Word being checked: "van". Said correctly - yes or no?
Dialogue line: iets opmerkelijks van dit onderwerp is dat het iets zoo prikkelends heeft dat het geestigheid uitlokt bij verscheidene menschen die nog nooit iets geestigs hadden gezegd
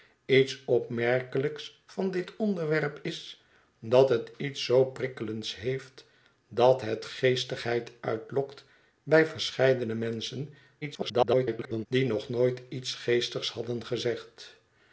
yes